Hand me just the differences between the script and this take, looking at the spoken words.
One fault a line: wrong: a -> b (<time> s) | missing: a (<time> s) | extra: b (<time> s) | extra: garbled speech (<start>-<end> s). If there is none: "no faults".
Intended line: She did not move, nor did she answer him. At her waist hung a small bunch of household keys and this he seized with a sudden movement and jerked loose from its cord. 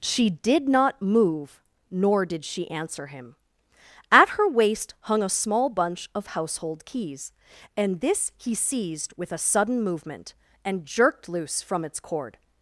no faults